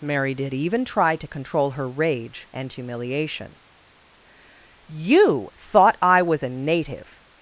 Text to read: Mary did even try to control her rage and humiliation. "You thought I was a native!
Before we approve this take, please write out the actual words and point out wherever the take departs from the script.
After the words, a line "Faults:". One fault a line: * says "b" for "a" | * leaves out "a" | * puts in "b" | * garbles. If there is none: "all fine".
Mary did even try to control her rage and humiliation. "You thought I was a native!
Faults:
all fine